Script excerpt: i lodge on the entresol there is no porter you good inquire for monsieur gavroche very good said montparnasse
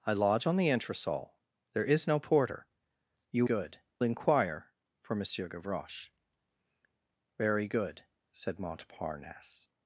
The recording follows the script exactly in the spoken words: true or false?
true